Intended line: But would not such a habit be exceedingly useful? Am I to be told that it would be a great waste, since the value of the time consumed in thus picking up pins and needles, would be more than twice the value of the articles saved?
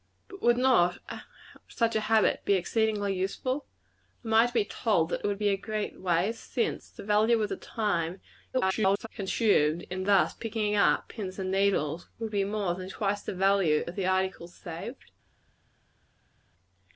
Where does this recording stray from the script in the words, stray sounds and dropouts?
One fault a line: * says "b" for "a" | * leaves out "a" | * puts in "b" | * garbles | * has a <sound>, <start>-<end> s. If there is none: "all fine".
* garbles